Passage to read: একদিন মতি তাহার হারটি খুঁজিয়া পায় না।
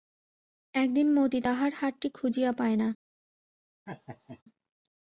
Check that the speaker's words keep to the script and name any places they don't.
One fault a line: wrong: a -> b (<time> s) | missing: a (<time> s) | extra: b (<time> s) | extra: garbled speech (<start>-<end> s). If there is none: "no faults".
no faults